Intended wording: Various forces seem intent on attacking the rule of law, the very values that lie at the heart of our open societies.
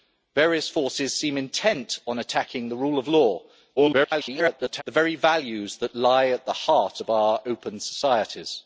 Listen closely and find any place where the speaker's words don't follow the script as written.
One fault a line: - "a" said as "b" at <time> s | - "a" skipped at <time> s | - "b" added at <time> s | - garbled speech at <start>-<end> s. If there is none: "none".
- garbled speech at 3.8-4.8 s